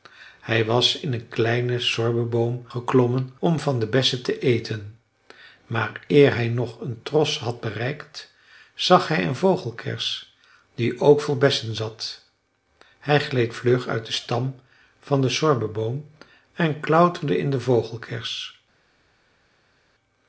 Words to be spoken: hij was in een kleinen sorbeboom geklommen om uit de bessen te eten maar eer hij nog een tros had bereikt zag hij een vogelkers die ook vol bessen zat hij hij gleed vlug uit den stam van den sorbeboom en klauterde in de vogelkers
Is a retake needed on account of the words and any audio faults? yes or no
yes